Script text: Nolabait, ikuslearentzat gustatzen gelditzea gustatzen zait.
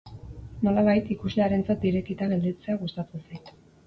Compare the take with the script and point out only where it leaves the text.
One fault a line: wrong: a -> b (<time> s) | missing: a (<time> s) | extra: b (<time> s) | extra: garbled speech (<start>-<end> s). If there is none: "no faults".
wrong: gustatzen -> irekita (1.9 s)